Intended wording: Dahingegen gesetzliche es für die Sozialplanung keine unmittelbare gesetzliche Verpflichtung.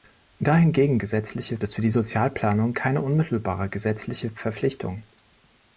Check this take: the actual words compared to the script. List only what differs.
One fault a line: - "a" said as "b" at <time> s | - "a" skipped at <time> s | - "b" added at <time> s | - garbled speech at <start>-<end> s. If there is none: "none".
none